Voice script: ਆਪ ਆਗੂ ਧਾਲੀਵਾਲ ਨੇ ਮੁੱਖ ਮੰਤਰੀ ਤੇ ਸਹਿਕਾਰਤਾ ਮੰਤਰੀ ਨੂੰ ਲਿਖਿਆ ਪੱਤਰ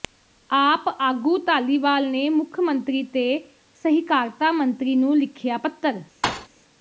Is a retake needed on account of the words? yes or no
no